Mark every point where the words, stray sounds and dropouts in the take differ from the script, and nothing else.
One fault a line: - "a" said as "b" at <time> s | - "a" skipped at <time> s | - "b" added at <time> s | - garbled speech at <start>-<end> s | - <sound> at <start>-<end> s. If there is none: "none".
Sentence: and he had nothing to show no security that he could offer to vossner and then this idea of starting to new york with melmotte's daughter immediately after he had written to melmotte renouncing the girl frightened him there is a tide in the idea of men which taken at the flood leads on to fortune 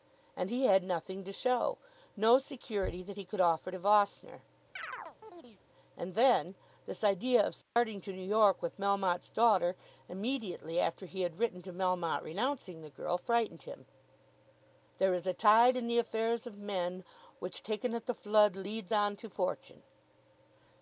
- chirp at 4.8-5.6 s
- dropout at 7.6-7.8 s
- "idea" said as "affairs" at 16.0 s